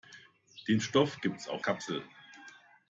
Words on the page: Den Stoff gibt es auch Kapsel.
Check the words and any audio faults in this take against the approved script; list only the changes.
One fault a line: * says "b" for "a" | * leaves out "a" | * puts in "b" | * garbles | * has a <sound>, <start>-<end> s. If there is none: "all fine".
all fine